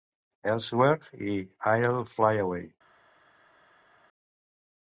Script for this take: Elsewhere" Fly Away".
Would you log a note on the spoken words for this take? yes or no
yes